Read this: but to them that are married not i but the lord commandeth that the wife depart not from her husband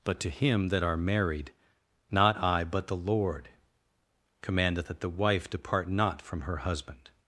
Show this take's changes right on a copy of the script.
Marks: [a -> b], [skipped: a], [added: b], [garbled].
but to [them -> him] that are married not i but the lord commandeth that the wife depart not from her husband